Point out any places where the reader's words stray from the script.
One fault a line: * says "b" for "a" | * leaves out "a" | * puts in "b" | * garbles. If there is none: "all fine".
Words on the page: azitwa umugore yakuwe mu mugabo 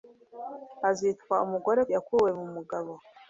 all fine